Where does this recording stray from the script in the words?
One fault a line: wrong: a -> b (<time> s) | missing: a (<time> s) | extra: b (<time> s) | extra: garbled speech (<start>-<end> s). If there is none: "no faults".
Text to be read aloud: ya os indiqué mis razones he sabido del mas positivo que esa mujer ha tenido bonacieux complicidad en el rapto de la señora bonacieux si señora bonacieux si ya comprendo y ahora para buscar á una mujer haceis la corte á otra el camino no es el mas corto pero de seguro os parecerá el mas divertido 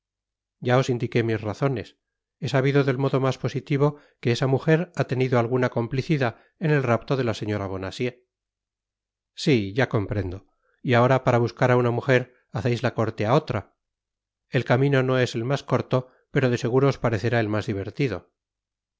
extra: modo (3.0 s)
wrong: bonacieux -> alguna (5.4 s)
missing: señora bonacieux si (9.7 s)